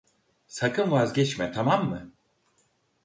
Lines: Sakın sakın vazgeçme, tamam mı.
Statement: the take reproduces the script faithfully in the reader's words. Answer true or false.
false